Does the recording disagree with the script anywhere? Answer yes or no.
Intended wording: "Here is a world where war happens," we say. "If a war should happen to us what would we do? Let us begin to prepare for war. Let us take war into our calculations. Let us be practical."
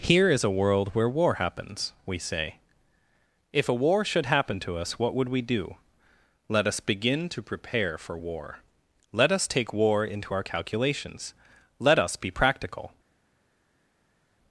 no